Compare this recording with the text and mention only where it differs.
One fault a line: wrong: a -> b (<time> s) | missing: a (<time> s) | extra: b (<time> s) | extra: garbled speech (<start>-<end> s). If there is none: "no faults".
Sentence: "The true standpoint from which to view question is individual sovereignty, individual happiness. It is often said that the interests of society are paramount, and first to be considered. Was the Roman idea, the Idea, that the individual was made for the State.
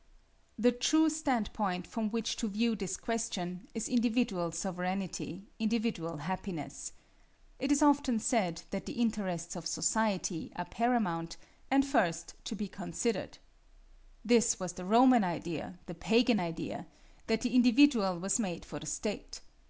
extra: this (2.8 s)
extra: This (14.2 s)
extra: Pagan (15.9 s)